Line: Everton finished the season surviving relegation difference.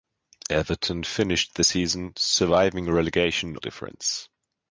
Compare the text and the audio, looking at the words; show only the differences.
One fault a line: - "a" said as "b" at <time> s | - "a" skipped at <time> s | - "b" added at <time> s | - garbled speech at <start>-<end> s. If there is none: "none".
none